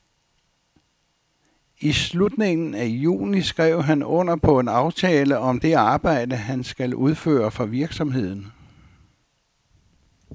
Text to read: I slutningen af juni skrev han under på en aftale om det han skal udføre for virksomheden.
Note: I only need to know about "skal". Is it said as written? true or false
true